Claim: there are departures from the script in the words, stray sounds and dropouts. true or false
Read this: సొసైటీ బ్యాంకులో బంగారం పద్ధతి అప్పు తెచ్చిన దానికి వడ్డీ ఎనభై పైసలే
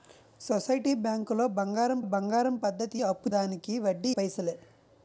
true